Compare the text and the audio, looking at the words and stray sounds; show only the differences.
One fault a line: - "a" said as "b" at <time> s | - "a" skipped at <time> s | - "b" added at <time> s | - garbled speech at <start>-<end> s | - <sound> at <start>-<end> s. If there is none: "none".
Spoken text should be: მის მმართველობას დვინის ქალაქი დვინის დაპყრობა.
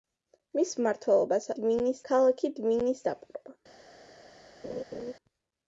- laugh at 4.6-5.1 s